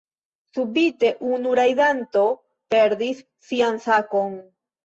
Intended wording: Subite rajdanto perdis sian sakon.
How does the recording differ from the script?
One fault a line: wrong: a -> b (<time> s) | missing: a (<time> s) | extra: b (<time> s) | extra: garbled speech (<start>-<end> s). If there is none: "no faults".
extra: unu (1.3 s)